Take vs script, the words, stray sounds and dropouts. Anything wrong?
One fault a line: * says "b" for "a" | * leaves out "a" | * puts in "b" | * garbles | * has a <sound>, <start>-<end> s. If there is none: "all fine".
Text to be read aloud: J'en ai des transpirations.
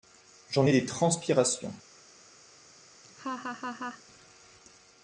* has a laugh, 3.0-4.0 s